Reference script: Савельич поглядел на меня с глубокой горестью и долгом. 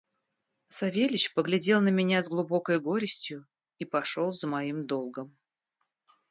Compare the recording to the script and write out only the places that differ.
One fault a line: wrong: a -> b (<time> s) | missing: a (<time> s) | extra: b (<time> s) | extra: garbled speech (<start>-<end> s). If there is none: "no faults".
extra: пошел за моим (3.9 s)